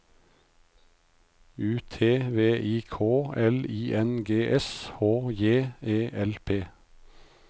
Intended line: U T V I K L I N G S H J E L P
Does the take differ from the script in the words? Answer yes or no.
no